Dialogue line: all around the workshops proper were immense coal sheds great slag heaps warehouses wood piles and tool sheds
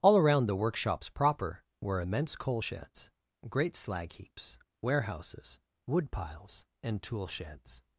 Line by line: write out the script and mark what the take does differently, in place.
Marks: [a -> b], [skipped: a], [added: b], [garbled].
all around the workshops proper were immense coal sheds great slag heaps warehouses wood piles and tool sheds